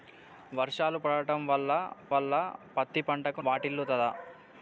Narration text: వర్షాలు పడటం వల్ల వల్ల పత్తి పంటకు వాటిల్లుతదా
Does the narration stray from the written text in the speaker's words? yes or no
no